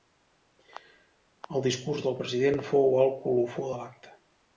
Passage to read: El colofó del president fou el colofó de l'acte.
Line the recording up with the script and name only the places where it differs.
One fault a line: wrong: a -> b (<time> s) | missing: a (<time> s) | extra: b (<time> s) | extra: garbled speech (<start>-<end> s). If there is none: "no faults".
wrong: colofó -> discurs (1.7 s)